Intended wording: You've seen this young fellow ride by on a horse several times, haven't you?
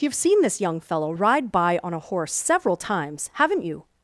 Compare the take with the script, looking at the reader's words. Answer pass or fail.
pass